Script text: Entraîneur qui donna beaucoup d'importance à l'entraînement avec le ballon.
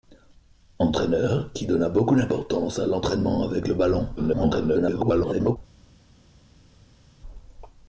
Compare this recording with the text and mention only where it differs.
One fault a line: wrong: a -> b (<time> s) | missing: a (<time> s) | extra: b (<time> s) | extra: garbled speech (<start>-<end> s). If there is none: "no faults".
extra: garbled speech (4.2-5.6 s)